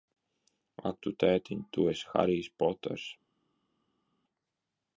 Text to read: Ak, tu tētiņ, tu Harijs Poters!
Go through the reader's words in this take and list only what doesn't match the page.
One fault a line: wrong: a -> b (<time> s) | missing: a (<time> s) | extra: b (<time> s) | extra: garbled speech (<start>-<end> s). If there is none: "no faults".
extra: esi (1.9 s)